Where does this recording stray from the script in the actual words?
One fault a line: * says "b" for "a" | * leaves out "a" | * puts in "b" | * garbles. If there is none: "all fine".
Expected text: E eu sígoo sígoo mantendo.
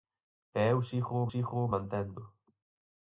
all fine